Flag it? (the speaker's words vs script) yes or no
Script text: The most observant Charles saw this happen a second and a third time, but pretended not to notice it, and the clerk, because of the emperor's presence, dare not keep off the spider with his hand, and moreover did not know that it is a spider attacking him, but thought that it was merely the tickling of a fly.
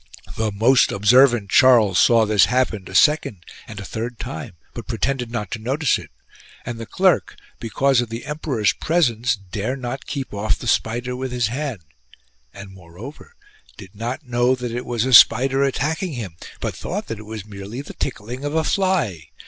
yes